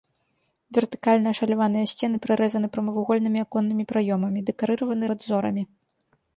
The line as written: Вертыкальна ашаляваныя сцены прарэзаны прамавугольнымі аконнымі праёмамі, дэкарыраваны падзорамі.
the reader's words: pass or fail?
pass